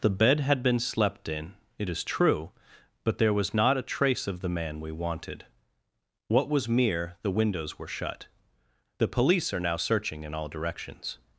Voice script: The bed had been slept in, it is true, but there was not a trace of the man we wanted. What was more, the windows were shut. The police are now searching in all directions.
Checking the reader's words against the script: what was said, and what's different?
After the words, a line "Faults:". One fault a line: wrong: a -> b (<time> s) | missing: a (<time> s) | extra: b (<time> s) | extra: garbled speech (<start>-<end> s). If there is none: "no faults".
The bed had been slept in, it is true, but there was not a trace of the man we wanted. What was mere, the windows were shut. The police are now searching in all directions.
Faults:
wrong: more -> mere (6.7 s)